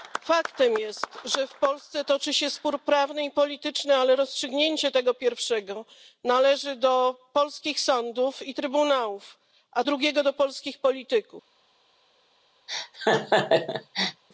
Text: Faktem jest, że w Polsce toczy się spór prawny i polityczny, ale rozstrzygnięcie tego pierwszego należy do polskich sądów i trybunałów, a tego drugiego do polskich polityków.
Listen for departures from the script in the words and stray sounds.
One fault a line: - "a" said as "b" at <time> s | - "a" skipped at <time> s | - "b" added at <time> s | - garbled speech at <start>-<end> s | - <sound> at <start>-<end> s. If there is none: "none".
- "tego" skipped at 9.8 s
- laugh at 12.7-14.2 s